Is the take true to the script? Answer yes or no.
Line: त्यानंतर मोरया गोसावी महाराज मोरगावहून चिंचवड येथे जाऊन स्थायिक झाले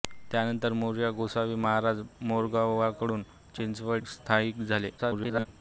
no